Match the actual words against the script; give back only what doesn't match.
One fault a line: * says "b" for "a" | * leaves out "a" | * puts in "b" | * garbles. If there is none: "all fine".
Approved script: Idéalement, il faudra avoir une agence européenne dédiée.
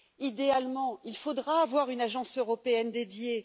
all fine